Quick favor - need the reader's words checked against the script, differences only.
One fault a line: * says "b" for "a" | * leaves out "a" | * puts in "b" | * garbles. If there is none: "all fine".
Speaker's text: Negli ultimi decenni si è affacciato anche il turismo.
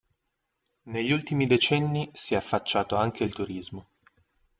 all fine